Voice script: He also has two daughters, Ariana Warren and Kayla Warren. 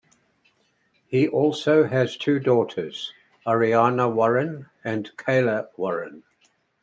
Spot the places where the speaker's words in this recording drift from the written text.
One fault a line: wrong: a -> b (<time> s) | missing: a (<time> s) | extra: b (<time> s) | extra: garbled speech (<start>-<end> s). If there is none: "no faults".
no faults